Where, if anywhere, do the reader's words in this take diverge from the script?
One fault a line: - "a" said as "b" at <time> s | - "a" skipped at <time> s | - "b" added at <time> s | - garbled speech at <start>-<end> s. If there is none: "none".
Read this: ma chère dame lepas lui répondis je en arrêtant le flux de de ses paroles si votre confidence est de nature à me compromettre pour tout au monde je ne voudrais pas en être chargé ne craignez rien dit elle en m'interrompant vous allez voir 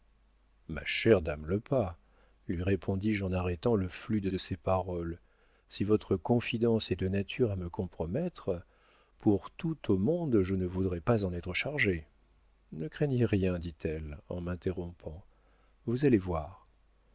none